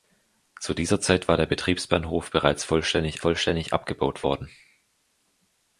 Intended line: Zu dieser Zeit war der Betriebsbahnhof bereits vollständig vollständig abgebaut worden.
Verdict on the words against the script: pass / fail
pass